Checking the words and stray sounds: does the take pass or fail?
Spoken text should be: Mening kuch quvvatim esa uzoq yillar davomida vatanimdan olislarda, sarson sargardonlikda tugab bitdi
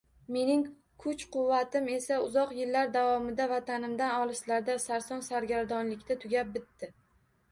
pass